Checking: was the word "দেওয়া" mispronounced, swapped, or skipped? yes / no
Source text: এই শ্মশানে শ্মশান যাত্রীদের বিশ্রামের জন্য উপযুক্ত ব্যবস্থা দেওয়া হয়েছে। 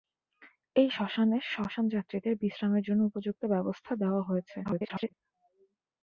no